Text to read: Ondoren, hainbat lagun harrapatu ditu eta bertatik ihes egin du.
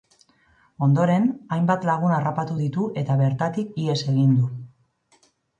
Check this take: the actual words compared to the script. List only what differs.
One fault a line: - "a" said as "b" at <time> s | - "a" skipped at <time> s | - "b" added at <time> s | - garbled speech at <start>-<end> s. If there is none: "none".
none